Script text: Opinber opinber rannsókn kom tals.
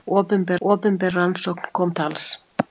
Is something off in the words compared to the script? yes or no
no